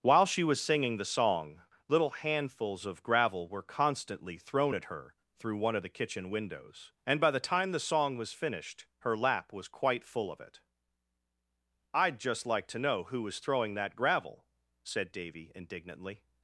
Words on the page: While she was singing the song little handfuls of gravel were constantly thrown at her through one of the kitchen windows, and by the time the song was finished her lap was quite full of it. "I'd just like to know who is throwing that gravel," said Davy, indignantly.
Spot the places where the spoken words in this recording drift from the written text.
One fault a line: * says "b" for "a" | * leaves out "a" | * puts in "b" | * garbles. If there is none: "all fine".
* says "was" for "is"